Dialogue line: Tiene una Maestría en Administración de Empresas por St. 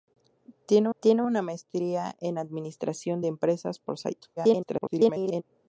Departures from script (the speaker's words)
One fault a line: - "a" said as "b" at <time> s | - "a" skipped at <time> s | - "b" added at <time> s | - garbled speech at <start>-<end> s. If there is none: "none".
- "tiene" added at 1.0 s
- garbled speech at 4.4-5.4 s